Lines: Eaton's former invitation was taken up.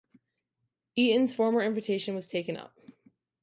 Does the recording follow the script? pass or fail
pass